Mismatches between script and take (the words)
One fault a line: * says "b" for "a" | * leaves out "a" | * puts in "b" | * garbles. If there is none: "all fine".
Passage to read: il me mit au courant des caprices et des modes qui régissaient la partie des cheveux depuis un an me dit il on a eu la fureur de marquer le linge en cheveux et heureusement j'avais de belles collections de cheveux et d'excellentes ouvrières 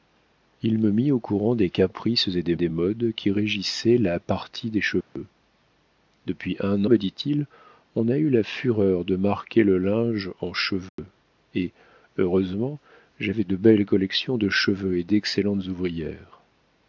* puts in "des"
* leaves out "an"